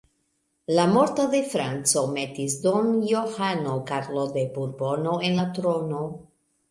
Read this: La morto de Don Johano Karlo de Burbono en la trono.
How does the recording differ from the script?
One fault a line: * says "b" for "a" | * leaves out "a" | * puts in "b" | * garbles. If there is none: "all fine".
* puts in "Franco metis"